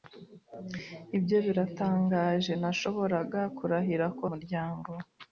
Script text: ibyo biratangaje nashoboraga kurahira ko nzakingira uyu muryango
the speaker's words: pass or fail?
fail